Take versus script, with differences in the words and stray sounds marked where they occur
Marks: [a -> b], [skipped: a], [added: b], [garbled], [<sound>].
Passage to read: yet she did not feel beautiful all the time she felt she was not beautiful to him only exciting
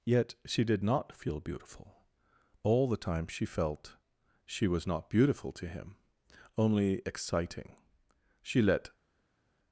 yet she did not feel beautiful all the time she felt she was not beautiful to him only exciting [added: she let]